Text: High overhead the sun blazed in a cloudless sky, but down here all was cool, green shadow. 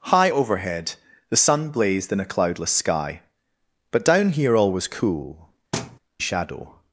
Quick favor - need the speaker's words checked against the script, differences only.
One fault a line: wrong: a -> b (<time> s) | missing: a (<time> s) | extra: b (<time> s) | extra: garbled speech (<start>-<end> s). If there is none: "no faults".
missing: green (5.5 s)